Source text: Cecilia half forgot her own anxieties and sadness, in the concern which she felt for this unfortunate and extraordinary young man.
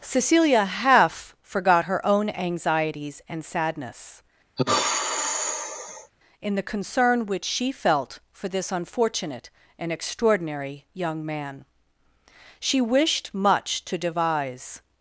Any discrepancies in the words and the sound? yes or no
yes